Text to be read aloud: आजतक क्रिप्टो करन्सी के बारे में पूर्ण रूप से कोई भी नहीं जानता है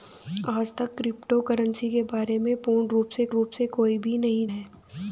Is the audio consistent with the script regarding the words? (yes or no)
no